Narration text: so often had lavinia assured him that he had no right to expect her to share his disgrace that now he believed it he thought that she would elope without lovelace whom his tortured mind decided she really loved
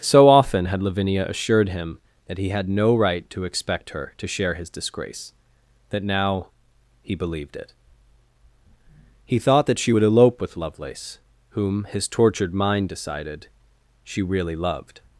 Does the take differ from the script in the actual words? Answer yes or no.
yes